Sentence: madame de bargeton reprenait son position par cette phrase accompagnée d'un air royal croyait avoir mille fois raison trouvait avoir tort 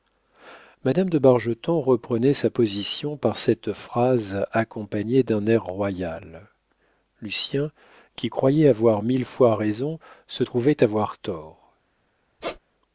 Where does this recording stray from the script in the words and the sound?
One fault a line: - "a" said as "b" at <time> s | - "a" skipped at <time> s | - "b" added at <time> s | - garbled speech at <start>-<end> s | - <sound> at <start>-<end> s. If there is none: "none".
- "son" said as "sa" at 2.3 s
- "lucien qui" added at 7.2 s
- "se" added at 10.3 s
- squeak at 12.4-12.6 s